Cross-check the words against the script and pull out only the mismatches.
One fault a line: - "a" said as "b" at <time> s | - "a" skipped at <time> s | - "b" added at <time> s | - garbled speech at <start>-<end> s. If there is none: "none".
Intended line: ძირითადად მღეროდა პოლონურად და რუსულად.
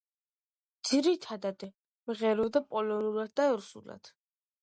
none